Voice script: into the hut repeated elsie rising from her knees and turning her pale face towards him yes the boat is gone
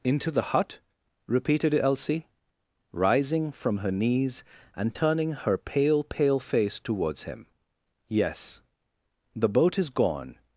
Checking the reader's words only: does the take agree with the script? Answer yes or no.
no